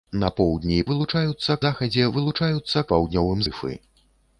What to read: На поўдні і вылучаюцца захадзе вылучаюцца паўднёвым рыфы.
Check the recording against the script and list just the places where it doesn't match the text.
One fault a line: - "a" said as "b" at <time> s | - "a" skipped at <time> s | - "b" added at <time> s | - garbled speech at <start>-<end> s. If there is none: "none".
none